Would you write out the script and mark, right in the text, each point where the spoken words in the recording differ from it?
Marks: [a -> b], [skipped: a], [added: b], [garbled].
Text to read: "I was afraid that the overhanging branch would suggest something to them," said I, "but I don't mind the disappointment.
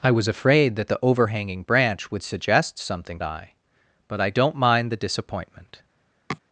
"I was afraid that the overhanging branch would suggest something [skipped: to them," said] I, "but I don't mind the disappointment.